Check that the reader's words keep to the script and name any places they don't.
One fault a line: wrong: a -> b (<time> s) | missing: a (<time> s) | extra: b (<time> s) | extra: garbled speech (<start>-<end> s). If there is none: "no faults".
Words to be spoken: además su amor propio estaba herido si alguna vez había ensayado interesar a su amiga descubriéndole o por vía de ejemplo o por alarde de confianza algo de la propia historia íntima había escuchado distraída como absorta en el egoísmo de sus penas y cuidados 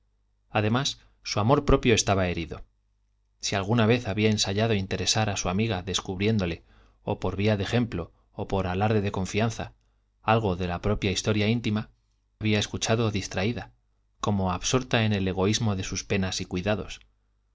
no faults